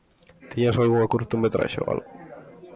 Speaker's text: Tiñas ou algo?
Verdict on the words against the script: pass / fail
fail